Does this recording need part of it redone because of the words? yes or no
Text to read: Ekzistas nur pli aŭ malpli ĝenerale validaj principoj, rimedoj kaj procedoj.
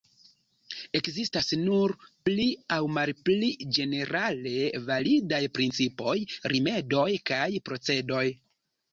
no